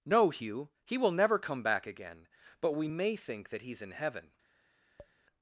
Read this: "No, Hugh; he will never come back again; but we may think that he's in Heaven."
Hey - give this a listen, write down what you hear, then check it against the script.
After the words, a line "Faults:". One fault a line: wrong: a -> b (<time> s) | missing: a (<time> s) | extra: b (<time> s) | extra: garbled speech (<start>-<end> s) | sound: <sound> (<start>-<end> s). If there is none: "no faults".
"No, Hugh; he will never come back again; but we may think that he's in Heaven."
Faults:
sound: tap (5.0-5.2 s)